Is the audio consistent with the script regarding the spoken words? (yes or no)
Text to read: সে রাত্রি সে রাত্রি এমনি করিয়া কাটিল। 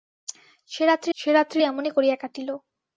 yes